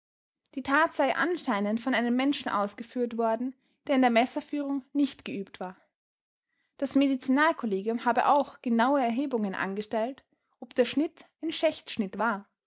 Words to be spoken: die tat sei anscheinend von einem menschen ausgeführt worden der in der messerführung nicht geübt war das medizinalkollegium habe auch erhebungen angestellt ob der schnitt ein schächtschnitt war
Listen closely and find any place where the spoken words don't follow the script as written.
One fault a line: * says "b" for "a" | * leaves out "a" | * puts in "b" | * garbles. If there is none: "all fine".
* puts in "genaue"